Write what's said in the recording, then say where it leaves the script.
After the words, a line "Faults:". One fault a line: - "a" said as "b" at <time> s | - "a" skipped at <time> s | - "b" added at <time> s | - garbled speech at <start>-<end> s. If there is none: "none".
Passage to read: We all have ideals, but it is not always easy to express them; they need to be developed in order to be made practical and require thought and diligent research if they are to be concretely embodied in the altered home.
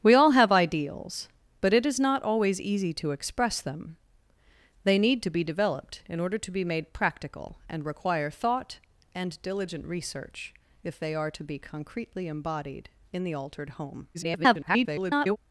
We all have ideals, but it is not always easy to express them; they need to be developed in order to be made practical and require thought and diligent research if they are to be concretely embodied in the altered home. [garbled]
Faults:
- garbled speech at 14.1-15.4 s